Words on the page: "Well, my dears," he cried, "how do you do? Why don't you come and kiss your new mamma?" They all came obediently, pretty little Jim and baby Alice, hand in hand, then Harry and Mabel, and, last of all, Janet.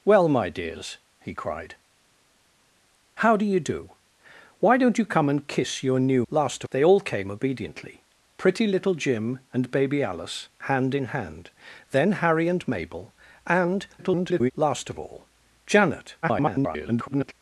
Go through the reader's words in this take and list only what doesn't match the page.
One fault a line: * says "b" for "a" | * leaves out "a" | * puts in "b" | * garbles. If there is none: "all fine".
* says "last" for "mamma"
* garbles
* garbles